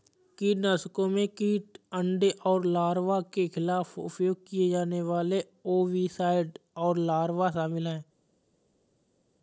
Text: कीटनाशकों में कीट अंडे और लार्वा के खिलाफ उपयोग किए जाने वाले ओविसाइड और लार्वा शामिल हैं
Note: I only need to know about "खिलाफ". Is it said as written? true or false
true